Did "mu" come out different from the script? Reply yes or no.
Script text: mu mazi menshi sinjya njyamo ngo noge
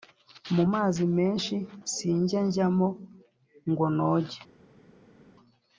no